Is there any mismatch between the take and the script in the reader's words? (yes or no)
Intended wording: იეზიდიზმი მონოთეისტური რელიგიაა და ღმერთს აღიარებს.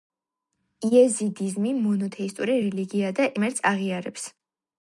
no